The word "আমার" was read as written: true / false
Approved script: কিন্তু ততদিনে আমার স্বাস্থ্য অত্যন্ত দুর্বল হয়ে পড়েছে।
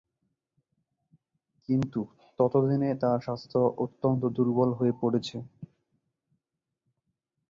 false